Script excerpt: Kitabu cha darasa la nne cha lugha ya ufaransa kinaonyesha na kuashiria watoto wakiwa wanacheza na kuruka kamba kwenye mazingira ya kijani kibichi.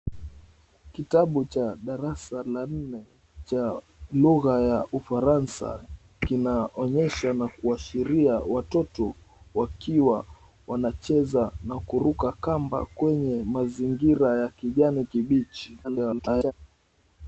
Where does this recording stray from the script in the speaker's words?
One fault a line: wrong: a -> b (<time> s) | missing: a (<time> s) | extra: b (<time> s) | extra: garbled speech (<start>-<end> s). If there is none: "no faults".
extra: garbled speech (15.8-16.5 s)